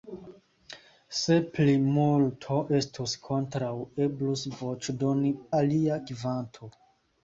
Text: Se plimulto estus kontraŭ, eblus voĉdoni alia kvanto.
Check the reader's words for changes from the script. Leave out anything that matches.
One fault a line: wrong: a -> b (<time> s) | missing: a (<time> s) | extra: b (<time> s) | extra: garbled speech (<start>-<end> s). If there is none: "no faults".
no faults